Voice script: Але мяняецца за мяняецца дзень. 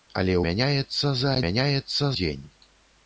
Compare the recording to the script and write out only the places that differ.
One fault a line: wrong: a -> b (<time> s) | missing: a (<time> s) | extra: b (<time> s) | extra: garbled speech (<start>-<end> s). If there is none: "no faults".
no faults